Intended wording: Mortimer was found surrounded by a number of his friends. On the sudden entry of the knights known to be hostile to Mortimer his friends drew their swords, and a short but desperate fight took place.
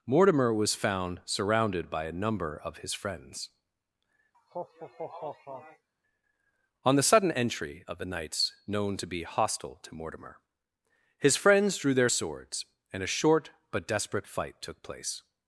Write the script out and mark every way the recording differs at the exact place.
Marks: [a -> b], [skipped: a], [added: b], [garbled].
Mortimer was found surrounded by a number of his friends. On the sudden entry of the knights known to be hostile to Mortimer his friends drew their swords, and a short but desperate fight took place.